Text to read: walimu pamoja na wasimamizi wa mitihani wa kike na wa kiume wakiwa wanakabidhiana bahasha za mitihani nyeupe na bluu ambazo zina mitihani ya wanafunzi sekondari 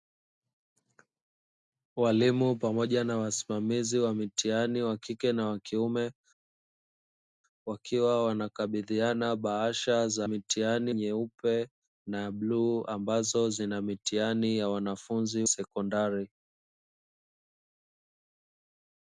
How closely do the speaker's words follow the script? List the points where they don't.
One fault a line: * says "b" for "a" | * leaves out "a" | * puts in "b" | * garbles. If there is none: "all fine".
all fine